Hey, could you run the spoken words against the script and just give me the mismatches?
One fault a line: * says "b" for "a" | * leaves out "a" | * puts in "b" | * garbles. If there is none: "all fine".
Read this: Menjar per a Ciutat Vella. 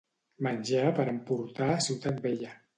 * puts in "emportar"